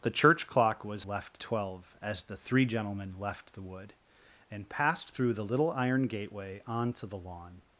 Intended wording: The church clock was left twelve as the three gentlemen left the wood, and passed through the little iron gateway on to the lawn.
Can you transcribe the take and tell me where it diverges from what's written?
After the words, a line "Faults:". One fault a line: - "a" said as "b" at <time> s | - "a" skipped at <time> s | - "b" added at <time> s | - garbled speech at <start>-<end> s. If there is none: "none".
The church clock was left twelve as the three gentlemen left the wood, and passed through the little iron gateway on to the lawn.
Faults:
none